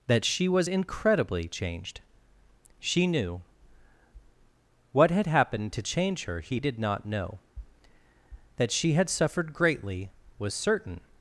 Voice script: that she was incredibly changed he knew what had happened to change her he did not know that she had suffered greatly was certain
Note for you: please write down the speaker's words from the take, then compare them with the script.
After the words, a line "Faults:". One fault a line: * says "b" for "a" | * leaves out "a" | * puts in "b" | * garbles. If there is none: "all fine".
that she was incredibly changed she knew what had happened to change her he did not know that she had suffered greatly was certain
Faults:
* says "she" for "he"